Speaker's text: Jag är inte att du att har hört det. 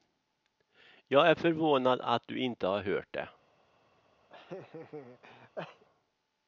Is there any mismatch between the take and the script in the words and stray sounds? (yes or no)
yes